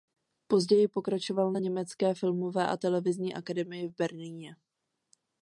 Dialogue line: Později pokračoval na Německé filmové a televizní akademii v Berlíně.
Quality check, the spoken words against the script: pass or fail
pass